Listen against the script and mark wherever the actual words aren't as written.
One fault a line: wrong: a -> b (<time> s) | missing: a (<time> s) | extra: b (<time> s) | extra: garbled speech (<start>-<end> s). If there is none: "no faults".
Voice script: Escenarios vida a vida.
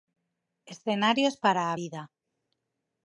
wrong: vida -> para (1.4 s)